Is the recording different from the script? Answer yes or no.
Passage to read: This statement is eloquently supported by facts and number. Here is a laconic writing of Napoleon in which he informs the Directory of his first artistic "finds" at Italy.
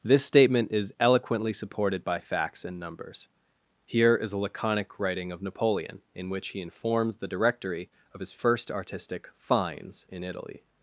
yes